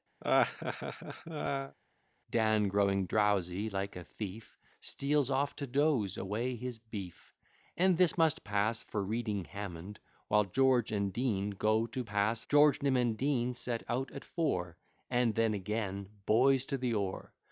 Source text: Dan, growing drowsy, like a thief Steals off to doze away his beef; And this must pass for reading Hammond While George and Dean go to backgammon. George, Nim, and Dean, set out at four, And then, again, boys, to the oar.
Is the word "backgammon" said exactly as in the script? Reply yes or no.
no